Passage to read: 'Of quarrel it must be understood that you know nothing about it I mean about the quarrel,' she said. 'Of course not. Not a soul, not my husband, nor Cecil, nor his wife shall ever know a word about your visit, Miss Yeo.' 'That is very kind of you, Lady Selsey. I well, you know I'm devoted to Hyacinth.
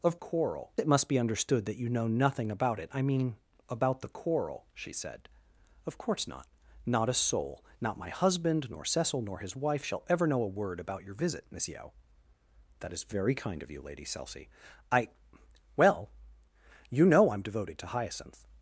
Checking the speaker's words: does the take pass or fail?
pass